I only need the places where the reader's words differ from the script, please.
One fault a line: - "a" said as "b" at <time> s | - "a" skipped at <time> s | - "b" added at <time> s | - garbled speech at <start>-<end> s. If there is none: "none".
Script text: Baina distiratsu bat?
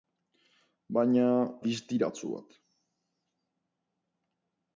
none